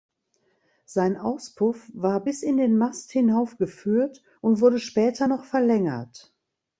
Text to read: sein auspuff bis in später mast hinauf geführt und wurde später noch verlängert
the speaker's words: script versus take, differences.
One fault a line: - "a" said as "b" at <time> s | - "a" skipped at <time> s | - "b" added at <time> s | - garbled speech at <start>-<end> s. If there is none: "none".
- "war" added at 1.9 s
- "später" said as "den" at 2.5 s